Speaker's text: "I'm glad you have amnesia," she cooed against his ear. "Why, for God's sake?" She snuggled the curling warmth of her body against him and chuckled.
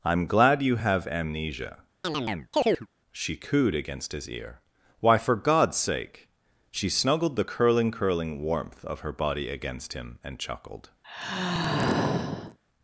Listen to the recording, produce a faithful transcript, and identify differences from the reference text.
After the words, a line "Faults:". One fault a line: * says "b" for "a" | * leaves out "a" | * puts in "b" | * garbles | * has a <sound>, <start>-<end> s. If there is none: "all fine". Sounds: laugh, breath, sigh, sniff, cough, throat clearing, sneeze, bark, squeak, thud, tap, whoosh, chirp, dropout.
"I'm glad you have amnesia," she cooed against his ear. "Why, for God's sake?" She snuggled the curling curling warmth of her body against him and chuckled.
Faults:
* has a chirp, 2.0-2.9 s
* puts in "curling"
* has a sigh, 11.0-12.6 s